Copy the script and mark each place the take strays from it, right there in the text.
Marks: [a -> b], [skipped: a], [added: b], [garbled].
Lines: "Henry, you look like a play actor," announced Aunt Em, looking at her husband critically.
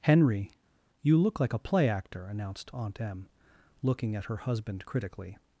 "Henry, you look like a play actor," announced Aunt Em, looking at her husband critically.